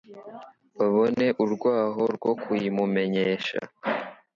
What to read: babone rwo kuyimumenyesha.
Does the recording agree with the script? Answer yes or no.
no